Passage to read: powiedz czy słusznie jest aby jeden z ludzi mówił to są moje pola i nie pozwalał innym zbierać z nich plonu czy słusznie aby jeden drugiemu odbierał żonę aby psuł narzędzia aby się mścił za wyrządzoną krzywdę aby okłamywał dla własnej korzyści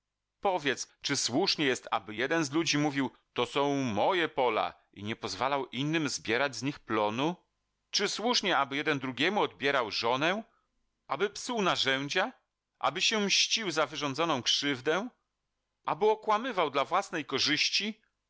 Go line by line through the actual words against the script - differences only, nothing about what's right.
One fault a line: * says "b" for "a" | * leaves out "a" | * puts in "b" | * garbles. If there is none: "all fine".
all fine